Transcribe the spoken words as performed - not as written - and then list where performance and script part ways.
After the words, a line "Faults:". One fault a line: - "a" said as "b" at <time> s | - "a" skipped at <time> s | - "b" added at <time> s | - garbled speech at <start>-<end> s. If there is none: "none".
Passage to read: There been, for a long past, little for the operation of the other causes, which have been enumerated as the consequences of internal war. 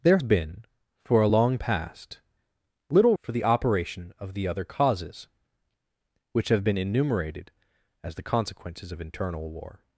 There been, for a long past, little for the operation of the other causes, which have been enumerated as the consequences of internal war.
Faults:
none